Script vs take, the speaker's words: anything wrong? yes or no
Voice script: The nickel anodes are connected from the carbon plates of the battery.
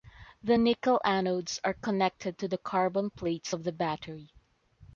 yes